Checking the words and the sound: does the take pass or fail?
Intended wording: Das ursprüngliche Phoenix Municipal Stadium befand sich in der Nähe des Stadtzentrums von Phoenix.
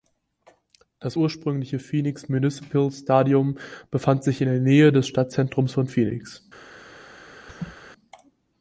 fail